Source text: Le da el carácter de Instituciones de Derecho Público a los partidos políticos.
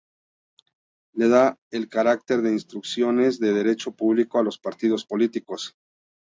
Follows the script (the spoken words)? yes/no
yes